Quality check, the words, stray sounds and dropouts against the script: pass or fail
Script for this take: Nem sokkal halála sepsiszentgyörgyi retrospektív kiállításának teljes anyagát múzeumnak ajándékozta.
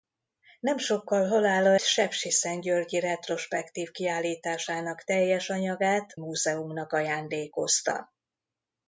pass